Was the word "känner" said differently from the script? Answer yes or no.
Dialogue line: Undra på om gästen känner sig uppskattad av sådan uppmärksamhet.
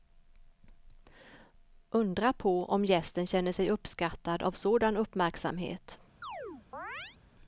no